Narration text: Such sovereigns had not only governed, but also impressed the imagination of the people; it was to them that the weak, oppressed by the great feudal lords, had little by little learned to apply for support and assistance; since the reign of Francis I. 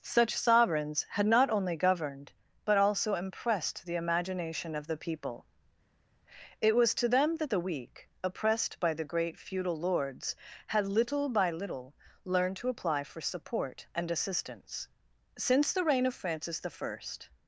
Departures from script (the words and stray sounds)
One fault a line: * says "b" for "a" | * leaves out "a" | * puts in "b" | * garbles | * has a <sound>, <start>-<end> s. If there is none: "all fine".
all fine